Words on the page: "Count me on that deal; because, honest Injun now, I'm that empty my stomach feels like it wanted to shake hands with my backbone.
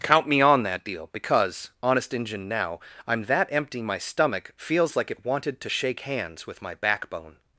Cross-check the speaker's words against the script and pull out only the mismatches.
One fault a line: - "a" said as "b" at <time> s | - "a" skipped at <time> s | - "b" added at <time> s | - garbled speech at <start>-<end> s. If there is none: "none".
none